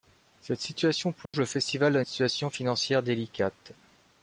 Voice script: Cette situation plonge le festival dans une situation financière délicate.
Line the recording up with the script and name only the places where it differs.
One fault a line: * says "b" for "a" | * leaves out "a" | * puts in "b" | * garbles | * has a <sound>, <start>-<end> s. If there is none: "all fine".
* has a dropout, 1.3-1.3 s